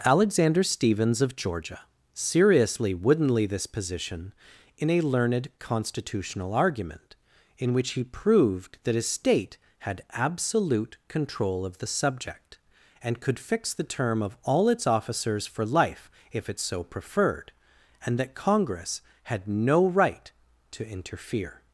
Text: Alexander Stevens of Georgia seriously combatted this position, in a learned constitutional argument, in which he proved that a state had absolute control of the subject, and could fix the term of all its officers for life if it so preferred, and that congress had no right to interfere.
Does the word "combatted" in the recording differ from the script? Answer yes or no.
yes